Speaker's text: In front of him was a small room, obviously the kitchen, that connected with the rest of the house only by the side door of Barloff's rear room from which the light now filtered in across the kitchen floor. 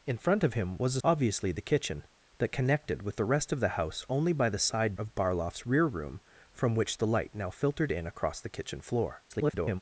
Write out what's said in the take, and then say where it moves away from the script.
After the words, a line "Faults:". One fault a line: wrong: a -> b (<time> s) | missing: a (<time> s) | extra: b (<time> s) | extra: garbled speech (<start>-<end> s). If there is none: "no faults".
In front of him was a obviously the kitchen, that connected with the rest of the house only by the side of Barloff's rear room from which the light now filtered in across the kitchen floor. [garbled]
Faults:
missing: small room (1.0 s)
missing: door (4.9 s)
extra: garbled speech (9.3-9.8 s)